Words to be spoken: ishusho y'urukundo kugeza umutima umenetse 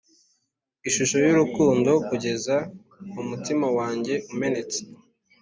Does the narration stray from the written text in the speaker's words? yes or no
yes